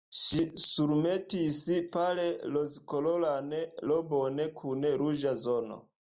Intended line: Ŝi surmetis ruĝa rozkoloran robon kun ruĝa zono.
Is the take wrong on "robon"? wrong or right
right